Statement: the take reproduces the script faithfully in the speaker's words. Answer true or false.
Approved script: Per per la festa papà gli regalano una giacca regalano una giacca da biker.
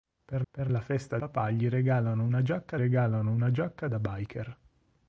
true